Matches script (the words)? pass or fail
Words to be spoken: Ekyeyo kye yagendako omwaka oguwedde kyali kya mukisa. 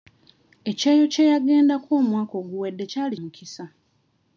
fail